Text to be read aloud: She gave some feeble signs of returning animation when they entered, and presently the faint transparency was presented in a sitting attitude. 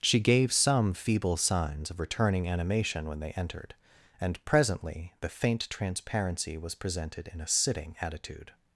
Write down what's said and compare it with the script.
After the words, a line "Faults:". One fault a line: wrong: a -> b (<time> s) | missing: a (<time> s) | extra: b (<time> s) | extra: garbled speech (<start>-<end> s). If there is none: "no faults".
She gave some feeble signs of returning animation when they entered, and presently the faint transparency was presented in a sitting attitude.
Faults:
no faults